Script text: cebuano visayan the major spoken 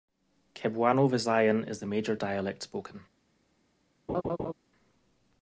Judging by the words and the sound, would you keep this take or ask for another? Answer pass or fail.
fail